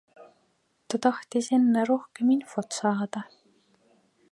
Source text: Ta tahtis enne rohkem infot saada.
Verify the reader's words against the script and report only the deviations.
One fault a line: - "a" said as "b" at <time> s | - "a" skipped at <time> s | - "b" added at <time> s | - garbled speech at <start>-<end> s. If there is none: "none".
none